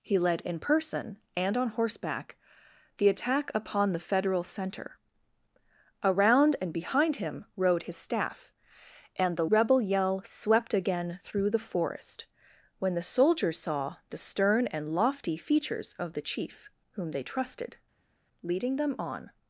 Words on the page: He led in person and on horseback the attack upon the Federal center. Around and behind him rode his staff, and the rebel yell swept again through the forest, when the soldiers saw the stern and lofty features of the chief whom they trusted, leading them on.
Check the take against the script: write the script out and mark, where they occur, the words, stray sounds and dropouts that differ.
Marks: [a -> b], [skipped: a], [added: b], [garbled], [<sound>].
He led in person and on horseback the attack upon the Federal center. Around and behind him rode his staff, and the rebel yell swept again through the forest, when the soldiers saw the stern and lofty features of the chief whom they trusted, leading them on.